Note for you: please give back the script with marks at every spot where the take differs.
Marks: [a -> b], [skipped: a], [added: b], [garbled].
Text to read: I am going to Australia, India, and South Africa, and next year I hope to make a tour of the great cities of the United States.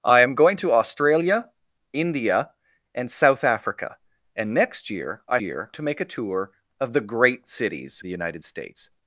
I am going to Australia, India, and South Africa, and next year I [hope -> year] to make a tour of the great cities [skipped: of] the United States.